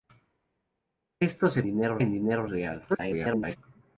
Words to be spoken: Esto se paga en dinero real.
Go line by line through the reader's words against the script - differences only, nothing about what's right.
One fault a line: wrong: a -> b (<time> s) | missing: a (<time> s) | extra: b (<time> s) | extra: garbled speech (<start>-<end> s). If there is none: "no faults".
wrong: paga -> dinero (1.6 s)
extra: garbled speech (2.9-3.6 s)